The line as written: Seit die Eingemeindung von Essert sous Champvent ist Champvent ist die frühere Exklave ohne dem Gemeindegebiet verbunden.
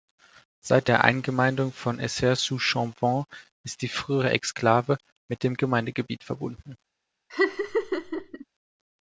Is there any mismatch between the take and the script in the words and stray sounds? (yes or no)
yes